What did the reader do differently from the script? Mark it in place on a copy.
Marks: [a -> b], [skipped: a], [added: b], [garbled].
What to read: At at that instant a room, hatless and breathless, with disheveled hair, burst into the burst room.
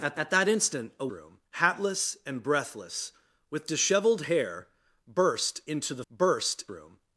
At at that instant a room, hatless and breathless, with disheveled hair, burst into the burst room.